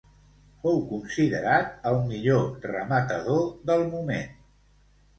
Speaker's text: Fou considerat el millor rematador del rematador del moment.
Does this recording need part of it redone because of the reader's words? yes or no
yes